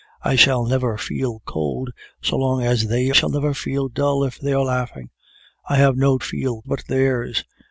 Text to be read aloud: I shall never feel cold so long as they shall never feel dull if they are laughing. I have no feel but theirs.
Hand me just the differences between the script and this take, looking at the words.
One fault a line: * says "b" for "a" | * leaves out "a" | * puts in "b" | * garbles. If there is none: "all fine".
all fine